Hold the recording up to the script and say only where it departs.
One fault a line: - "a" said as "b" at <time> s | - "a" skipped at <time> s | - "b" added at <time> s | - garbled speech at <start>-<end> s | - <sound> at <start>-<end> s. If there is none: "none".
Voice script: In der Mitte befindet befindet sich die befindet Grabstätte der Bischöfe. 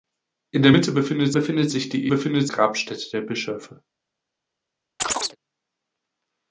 - chirp at 5.0-5.4 s